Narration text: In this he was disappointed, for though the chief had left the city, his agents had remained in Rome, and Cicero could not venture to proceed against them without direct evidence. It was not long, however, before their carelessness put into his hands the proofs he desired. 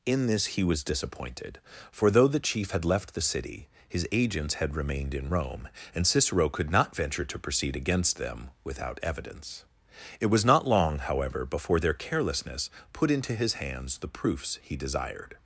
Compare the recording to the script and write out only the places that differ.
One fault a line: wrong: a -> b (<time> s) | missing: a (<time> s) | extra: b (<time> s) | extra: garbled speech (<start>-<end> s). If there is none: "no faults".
missing: direct (9.0 s)